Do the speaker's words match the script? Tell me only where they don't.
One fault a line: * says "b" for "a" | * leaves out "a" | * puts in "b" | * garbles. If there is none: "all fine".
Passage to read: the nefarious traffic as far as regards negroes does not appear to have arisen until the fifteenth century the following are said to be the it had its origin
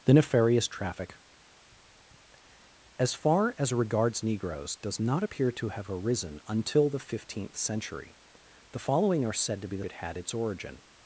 all fine